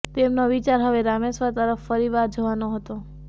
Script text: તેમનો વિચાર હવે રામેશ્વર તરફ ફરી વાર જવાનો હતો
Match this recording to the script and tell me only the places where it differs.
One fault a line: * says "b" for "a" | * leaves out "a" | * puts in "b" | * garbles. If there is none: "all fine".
all fine